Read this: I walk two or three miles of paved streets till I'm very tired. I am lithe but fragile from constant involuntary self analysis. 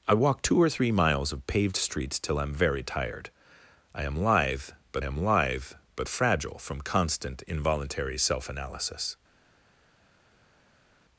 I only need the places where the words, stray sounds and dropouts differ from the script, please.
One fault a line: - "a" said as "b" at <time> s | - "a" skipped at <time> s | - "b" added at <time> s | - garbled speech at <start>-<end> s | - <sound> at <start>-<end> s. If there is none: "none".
- "am lithe but" added at 5.0 s